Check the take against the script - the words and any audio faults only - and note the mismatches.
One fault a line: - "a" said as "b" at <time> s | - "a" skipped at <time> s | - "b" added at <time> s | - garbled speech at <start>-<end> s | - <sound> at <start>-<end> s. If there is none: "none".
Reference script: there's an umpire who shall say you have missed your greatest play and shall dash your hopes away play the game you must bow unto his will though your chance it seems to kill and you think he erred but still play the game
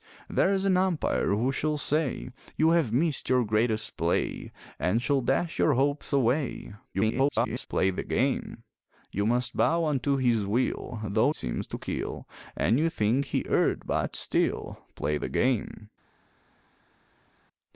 - garbled speech at 6.9-7.7 s
- "your chance it" skipped at 11.3 s